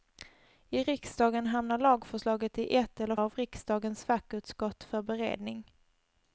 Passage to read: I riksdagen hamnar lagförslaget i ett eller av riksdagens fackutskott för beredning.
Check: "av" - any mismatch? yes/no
no